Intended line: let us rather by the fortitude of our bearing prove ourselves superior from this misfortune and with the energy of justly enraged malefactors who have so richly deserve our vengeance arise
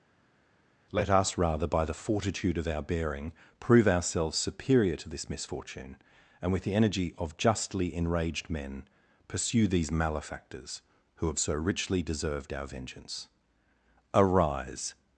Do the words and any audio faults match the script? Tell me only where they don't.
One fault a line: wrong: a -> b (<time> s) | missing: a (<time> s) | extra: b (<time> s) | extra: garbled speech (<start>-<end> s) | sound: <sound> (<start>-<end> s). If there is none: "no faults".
wrong: from -> to (5.0 s)
extra: men pursue these (8.5 s)
wrong: deserve -> deserved (12.0 s)